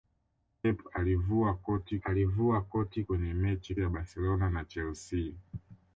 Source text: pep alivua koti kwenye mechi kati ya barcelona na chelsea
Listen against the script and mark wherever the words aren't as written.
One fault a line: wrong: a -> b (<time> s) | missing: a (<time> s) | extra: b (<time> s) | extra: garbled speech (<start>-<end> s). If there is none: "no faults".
extra: alivua koti (2.0 s)
missing: kati (3.7 s)